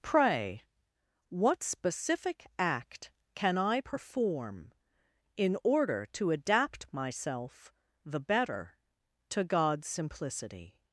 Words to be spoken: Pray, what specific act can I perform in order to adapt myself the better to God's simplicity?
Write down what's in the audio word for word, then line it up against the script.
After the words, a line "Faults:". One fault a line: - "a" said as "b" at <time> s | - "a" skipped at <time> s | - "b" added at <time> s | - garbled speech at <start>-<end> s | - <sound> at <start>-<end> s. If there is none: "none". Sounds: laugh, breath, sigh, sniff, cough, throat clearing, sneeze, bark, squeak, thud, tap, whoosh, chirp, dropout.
Pray, what specific act can I perform in order to adapt myself the better to God's simplicity?
Faults:
none